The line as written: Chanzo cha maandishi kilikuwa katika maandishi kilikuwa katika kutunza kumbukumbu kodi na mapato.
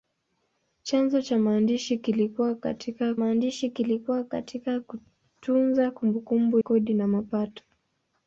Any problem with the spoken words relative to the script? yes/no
no